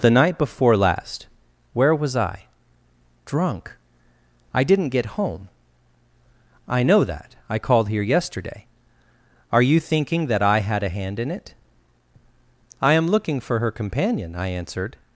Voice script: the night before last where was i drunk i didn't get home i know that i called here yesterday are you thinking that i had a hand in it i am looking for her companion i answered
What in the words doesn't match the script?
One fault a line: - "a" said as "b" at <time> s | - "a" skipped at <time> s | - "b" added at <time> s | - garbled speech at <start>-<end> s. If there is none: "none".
none